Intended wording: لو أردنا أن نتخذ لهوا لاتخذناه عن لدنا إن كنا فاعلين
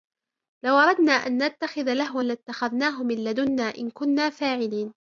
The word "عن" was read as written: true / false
false